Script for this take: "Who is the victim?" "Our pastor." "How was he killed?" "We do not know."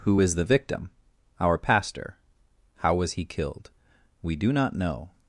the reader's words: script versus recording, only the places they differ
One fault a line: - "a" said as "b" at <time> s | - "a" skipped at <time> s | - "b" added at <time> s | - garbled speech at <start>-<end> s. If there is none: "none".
none